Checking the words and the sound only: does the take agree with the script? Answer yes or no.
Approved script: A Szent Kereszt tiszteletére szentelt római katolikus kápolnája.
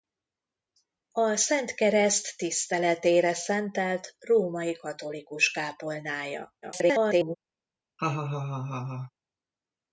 no